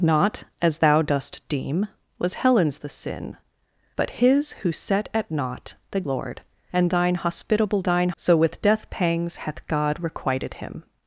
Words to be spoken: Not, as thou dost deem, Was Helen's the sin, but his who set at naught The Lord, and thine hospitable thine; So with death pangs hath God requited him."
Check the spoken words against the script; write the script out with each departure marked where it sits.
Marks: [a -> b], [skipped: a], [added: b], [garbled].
Not, as thou dost deem, Was Helen's the sin, but his who set at naught The Lord, and thine hospitable thine; So with death pangs hath God requited him."